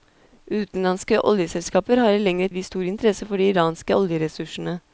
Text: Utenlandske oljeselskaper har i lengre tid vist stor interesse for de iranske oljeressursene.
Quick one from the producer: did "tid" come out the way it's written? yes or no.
no